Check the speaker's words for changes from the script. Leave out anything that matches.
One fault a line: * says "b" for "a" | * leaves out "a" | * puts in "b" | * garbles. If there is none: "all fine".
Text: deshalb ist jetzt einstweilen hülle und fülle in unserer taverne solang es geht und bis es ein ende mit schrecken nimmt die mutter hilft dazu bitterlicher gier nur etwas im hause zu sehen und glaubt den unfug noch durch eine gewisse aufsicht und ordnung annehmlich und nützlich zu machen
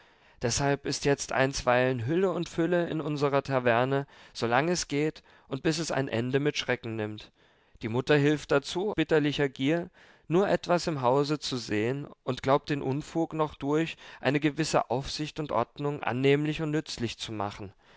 all fine